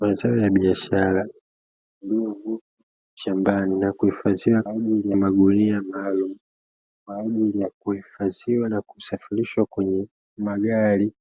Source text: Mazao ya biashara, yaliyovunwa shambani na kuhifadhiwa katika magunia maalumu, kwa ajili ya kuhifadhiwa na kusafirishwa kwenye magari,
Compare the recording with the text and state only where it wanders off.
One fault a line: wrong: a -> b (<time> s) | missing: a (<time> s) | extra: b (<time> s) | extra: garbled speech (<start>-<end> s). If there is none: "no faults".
wrong: katika -> ajili (4.7 s)